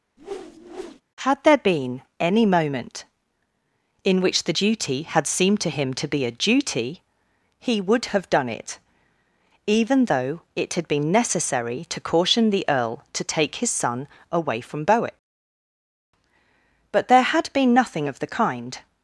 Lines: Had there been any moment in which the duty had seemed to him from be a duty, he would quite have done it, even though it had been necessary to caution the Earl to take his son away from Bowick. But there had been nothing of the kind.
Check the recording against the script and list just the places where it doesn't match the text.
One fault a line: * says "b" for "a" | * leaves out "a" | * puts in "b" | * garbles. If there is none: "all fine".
* says "to" for "from"
* leaves out "quite"